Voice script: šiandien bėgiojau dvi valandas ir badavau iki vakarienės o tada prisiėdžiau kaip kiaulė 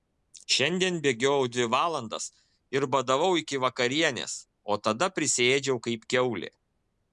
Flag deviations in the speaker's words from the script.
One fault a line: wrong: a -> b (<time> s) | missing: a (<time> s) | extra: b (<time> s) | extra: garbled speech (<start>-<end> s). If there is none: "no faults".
no faults